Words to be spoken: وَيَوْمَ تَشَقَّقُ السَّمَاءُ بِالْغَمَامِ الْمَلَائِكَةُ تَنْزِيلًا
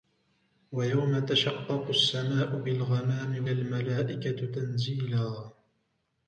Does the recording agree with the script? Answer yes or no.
yes